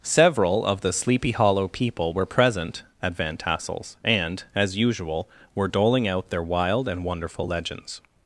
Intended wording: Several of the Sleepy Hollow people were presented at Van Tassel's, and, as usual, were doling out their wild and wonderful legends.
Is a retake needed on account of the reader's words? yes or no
yes